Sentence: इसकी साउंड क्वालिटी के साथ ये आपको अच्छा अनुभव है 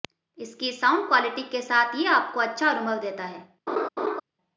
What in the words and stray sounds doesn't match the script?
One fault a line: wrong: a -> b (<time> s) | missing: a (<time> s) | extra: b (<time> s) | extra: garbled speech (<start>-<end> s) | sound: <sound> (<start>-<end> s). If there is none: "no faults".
extra: देता (3.0 s)
sound: laugh (3.7-4.2 s)